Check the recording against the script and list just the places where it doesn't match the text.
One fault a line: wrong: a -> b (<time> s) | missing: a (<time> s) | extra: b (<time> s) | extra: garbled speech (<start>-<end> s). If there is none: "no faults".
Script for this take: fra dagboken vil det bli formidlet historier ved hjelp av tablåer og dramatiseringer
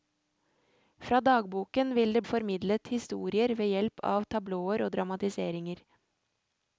missing: bli (2.2 s)